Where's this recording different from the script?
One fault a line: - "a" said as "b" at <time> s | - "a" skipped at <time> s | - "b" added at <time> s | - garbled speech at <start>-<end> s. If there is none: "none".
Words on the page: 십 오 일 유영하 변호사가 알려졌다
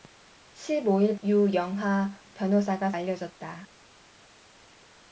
none